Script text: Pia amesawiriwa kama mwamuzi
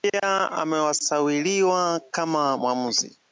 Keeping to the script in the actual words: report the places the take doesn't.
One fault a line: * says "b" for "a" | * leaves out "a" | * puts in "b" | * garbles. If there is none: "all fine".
all fine